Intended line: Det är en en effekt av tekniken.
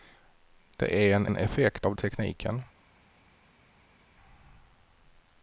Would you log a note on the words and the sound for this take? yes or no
no